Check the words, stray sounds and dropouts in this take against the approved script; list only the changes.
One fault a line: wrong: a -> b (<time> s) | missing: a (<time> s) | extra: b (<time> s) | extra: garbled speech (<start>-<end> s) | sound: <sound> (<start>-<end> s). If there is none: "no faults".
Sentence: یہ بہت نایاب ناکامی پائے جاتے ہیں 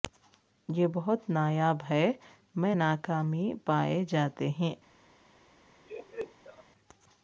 extra: ہے میں (1.9 s)
sound: laugh (5.8-6.6 s)